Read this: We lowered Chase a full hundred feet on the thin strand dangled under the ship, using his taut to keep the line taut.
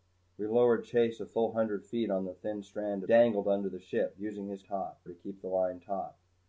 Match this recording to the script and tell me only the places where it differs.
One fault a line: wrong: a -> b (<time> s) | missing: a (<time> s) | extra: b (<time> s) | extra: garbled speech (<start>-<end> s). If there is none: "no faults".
no faults